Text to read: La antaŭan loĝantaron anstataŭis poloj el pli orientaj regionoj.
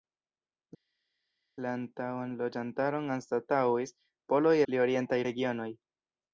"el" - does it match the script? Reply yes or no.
no